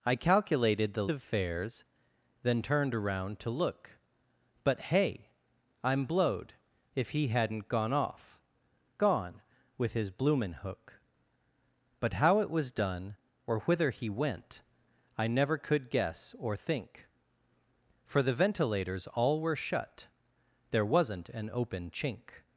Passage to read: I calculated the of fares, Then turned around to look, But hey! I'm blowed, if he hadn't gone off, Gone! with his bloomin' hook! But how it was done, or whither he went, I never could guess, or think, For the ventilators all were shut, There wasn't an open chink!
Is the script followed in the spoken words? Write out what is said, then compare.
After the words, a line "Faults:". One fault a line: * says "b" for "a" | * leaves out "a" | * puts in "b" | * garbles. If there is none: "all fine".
I calculated the of fares, Then turned around to look, But hey! I'm blowed, if he hadn't gone off, Gone! with his bloomin' hook! But how it was done, or whither he went, I never could guess, or think, For the ventilators all were shut, There wasn't an open chink!
Faults:
all fine